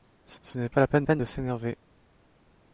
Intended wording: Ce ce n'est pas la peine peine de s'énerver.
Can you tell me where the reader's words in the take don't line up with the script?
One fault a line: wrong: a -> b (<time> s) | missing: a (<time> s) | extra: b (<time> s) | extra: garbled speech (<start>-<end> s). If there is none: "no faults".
no faults